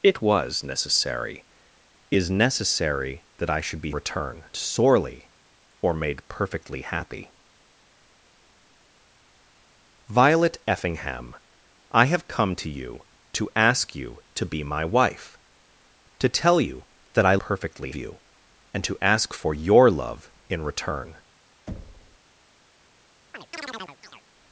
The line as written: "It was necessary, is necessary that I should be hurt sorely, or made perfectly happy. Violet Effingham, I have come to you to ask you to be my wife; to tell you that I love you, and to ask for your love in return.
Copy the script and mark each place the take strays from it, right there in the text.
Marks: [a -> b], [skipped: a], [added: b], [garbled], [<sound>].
"It was necessary, is necessary that I should be [hurt -> return] sorely, or made perfectly happy. Violet Effingham, I have come to you to ask you to be my wife; to tell you that I [love -> perfectly] you, and to ask for your love in return. [thud] [chirp]